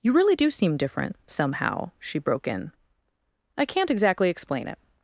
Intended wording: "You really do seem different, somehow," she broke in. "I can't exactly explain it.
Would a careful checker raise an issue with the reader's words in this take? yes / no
no